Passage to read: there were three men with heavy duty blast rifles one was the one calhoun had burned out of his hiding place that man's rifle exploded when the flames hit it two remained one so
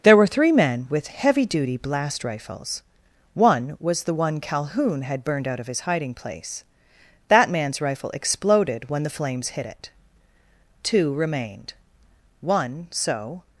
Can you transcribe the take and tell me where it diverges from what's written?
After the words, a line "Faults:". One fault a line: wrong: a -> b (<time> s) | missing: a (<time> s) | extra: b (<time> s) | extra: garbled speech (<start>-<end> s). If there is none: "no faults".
there were three men with heavy duty blast rifles one was the one calhoun had burned out of his hiding place that man's rifle exploded when the flames hit it two remained one so
Faults:
no faults